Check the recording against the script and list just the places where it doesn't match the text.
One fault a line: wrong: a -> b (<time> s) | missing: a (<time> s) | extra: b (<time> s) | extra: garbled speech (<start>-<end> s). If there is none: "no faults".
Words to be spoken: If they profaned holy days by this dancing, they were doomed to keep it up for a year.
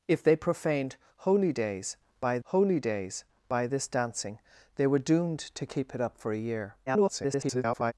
extra: holy days by (2.4 s)
extra: garbled speech (6.9-7.9 s)